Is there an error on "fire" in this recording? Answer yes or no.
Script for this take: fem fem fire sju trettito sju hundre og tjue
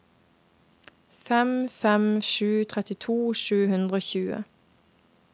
yes